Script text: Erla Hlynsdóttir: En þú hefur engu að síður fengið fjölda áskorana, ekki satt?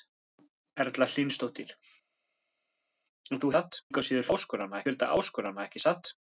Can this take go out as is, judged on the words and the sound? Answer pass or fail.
fail